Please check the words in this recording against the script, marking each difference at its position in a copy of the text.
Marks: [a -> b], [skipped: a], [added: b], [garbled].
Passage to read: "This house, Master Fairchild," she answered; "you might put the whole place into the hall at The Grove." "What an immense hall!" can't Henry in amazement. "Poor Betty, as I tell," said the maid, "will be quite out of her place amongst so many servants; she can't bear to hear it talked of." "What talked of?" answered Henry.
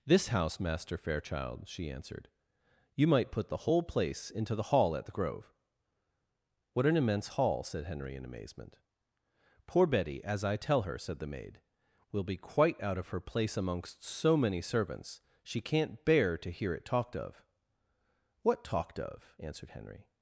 "This house, Master Fairchild," she answered; "you might put the whole place into the hall at The Grove." "What an immense hall!" [can't -> said] Henry in amazement. "Poor Betty, as I tell," [added: her] said the maid, "will be quite out of her place amongst so many servants; she can't bear to hear it talked of." "What talked of?" answered Henry.